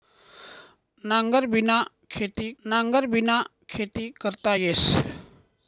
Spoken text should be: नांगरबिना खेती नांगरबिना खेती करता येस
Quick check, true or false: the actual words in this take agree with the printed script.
true